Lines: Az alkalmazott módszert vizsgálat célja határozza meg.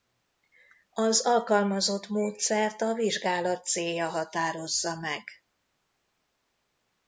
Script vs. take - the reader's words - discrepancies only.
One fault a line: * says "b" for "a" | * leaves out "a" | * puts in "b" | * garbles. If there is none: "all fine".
* puts in "a"